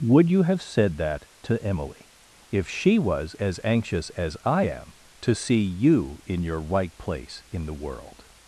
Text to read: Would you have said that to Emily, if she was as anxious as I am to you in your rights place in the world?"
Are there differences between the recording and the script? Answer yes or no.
yes